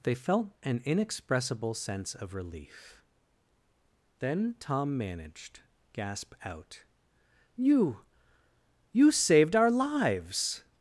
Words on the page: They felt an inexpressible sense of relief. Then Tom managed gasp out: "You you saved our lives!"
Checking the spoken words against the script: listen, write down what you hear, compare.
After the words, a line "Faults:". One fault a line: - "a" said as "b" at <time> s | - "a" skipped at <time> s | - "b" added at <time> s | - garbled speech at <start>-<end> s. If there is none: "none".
They felt an inexpressible sense of relief. Then Tom managed gasp out: "You you saved our lives!"
Faults:
none